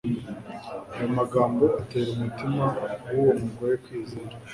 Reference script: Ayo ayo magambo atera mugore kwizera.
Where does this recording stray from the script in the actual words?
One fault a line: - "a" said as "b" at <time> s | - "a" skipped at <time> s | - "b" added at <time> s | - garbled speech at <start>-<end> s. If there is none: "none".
- "ayo" skipped at 1.1 s
- "umutima w'uwo" added at 2.1 s